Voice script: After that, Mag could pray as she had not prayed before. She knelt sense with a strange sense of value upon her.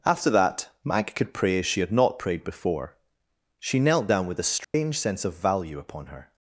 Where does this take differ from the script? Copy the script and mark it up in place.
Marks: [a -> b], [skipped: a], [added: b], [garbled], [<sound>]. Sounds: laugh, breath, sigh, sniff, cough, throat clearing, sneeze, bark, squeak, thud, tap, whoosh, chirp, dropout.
After that, Mag could pray as she had not prayed before. She knelt [sense -> down] with a strange [dropout] sense of value upon her.